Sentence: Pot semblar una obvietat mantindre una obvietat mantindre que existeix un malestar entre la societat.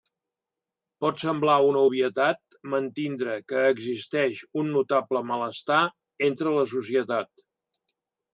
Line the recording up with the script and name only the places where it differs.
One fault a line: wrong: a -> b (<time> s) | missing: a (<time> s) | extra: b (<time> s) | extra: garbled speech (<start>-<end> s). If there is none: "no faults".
missing: una obvietat mantindre (3.4 s)
extra: notable (4.8 s)